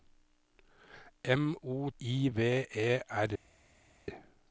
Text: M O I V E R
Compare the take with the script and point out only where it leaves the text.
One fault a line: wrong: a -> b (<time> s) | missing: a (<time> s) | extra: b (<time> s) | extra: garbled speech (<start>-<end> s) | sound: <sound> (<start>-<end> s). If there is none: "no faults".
no faults